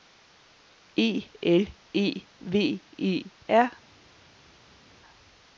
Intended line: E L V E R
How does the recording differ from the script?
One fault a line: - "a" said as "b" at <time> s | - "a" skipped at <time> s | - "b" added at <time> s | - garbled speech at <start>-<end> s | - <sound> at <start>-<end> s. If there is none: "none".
- "E" added at 1.9 s